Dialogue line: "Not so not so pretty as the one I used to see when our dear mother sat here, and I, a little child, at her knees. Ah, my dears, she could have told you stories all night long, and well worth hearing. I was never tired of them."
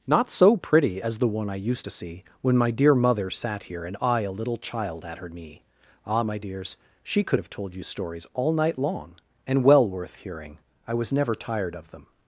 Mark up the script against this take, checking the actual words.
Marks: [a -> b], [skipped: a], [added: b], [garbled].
"Not so [skipped: not so] pretty as the one I used to see when [our -> my] dear mother sat here, and I, a little child, at her [knees. -> knee] Ah, my dears, she could have told you stories all night long, and well worth hearing. I was never tired of them."